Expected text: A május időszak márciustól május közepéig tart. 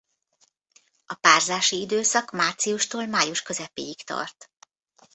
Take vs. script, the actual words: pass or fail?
fail